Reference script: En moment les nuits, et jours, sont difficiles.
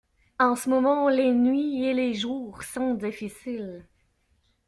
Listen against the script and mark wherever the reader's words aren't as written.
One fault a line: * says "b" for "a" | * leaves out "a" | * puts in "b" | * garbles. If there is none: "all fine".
* puts in "ce"
* puts in "les"